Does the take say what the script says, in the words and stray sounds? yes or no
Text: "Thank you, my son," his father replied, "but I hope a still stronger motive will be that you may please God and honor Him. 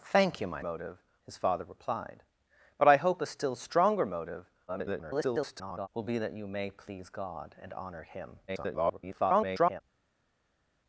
no